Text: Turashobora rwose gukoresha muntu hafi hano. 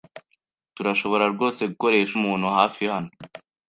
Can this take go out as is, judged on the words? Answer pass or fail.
pass